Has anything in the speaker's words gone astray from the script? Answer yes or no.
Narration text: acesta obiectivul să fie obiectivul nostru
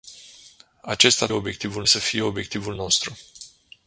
no